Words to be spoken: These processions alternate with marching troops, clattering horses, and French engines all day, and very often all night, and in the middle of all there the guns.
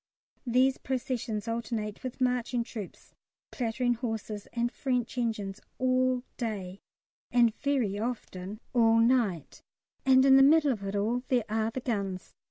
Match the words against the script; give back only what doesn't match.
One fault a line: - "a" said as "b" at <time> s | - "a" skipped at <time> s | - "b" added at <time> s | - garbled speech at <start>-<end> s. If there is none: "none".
- "it" added at 10.8 s
- "are" added at 11.5 s